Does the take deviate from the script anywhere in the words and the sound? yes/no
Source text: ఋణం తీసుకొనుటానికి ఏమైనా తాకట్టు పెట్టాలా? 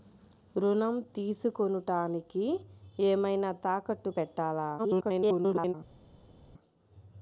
yes